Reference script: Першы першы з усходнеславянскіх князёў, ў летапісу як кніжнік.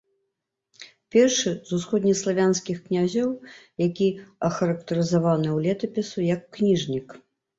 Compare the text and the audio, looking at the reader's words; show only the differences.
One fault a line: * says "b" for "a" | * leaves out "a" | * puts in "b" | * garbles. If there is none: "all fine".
* leaves out "першы"
* puts in "які ахарактарызаваны"